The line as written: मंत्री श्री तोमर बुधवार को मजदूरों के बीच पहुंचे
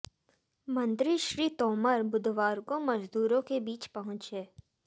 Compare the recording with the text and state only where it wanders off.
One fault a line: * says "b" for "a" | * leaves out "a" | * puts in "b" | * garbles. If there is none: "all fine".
all fine